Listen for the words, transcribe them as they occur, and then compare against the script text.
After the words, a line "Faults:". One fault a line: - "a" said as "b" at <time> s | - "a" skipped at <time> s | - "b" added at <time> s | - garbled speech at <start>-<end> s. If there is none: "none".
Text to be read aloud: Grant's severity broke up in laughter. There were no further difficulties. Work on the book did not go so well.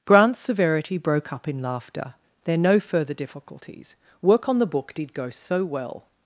Grant's severity broke up in laughter. There no further difficulties. Work on the book did go so well.
Faults:
- "were" skipped at 2.6 s
- "not" skipped at 5.1 s